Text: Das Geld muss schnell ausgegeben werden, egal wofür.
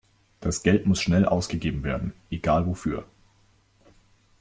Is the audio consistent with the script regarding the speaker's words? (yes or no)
yes